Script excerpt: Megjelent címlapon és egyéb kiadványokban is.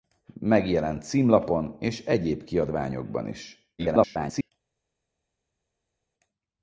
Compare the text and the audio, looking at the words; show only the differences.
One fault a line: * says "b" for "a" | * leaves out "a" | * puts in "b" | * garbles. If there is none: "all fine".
* garbles